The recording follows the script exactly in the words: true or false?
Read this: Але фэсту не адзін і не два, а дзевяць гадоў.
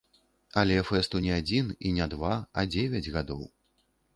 true